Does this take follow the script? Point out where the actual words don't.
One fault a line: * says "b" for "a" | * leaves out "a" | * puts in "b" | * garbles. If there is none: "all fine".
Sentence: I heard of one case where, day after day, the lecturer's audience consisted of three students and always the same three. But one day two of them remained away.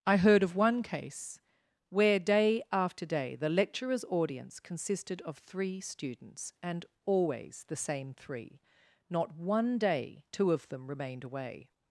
* says "Not" for "But"